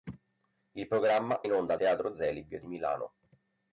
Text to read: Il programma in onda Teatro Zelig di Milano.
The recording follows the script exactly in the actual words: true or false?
true